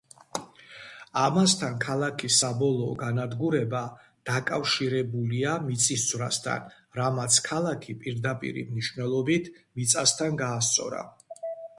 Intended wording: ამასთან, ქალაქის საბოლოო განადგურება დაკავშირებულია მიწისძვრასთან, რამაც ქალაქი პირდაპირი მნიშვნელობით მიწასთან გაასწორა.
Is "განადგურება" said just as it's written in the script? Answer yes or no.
yes